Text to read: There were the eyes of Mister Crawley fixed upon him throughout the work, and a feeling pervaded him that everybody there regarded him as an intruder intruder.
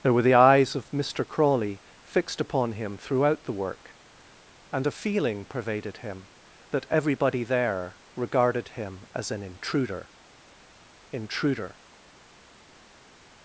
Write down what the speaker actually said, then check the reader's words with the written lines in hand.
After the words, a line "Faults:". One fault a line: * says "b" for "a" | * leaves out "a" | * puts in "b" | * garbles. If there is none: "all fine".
There were the eyes of Mister Crawley fixed upon him throughout the work, and a feeling pervaded him that everybody there regarded him as an intruder intruder.
Faults:
all fine